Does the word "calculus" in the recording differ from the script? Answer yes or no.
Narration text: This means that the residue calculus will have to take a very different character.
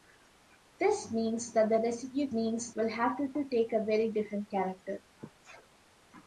yes